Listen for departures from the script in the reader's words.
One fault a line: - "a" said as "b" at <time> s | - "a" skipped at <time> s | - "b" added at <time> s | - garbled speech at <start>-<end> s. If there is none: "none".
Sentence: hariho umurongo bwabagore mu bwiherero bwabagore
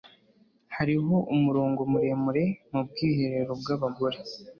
- "bwabagore" said as "muremure" at 1.9 s